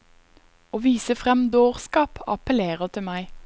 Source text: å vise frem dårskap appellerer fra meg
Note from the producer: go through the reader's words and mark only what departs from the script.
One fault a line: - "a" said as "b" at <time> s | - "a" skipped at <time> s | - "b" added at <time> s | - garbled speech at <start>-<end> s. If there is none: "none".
- "fra" said as "til" at 2.9 s